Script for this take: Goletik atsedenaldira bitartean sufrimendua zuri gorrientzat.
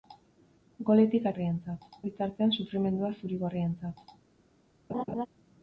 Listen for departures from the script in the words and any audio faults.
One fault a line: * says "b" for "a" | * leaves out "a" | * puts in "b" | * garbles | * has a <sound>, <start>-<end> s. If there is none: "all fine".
* says "gorrientzat" for "atsedenaldira"
* has a laugh, 4.9-5.3 s